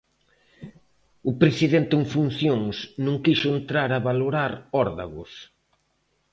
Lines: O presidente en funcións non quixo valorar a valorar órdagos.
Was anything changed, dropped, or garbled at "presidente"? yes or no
no